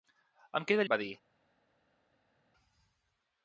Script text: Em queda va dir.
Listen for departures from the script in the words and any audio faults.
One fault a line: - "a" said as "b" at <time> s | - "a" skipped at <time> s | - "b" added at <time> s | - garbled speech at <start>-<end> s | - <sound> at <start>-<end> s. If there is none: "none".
none